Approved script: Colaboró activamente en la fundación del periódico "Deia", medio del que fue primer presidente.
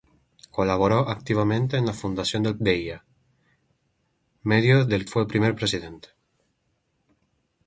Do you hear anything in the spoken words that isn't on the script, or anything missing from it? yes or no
yes